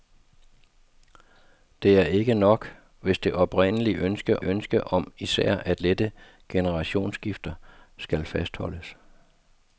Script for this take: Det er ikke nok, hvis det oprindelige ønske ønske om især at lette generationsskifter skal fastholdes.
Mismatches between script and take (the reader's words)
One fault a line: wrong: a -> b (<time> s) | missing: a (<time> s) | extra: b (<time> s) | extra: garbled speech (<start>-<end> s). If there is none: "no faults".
no faults